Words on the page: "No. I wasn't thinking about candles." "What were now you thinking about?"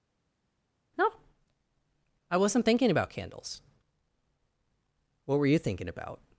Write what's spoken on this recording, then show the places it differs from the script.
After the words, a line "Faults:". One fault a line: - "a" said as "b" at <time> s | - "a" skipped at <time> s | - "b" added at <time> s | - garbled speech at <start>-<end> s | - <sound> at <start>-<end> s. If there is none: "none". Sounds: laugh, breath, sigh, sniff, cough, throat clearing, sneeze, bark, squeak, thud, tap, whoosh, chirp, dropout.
"No. I wasn't thinking about candles." "What were you thinking about?"
Faults:
- "now" skipped at 5.5 s